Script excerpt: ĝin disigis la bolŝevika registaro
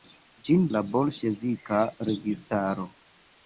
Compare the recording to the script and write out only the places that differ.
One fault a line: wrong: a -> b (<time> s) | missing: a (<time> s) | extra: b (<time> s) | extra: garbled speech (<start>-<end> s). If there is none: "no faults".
missing: disigis (0.6 s)